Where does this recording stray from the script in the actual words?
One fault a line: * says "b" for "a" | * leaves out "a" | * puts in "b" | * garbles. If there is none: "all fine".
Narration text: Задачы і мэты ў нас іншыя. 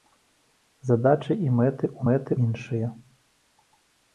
* says "мэты" for "нас"